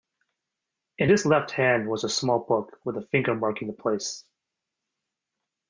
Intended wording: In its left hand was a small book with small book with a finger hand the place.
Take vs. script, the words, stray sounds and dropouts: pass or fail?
fail